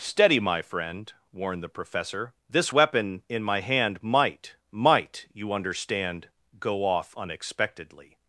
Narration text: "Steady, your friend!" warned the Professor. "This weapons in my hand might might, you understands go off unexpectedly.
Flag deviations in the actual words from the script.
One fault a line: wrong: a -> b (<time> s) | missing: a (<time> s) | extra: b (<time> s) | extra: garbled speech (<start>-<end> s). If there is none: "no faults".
wrong: your -> my (0.4 s)
wrong: weapons -> weapon (2.7 s)
wrong: understands -> understand (5.5 s)